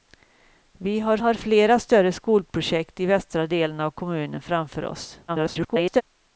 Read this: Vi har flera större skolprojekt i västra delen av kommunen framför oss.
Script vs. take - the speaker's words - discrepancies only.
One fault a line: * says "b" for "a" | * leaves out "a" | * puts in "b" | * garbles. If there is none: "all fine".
* puts in "har"
* garbles